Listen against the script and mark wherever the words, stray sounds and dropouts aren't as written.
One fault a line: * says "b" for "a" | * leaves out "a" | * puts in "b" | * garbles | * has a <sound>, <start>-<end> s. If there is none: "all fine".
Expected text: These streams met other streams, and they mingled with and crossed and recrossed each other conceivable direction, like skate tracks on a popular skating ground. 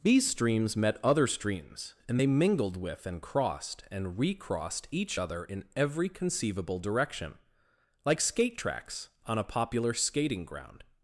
* puts in "in every"